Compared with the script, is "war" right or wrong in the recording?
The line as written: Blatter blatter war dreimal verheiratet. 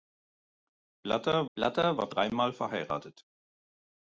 right